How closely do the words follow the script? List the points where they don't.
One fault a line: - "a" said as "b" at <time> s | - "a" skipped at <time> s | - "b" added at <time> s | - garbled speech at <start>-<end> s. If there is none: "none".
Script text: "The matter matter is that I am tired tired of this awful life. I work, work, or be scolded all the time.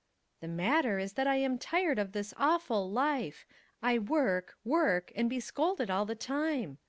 - "matter" skipped at 1.0 s
- "tired" skipped at 2.0 s
- "or" said as "and" at 5.1 s